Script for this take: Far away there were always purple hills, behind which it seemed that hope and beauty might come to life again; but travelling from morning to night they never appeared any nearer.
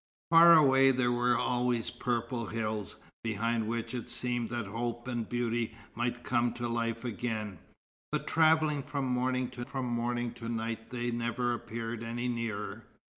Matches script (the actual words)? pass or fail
fail